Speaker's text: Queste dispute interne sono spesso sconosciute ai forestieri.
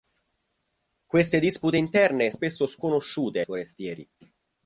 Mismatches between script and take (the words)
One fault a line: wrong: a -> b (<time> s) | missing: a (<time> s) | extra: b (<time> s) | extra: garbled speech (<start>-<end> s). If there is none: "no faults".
missing: sono (2.3 s)
missing: ai (3.4 s)